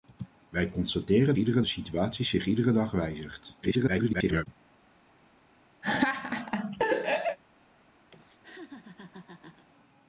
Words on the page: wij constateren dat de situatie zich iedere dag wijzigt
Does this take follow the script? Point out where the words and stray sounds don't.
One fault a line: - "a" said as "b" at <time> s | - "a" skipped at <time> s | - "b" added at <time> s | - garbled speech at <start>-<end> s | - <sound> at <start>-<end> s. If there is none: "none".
- "dat" said as "iedere" at 1.3 s
- garbled speech at 3.6-4.5 s
- laugh at 5.8-7.4 s
- laugh at 8.1-9.7 s